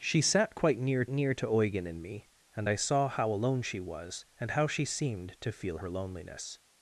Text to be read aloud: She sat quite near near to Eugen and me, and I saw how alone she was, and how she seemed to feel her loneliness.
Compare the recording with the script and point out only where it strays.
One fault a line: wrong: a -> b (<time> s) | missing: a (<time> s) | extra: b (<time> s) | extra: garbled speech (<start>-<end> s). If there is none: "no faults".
no faults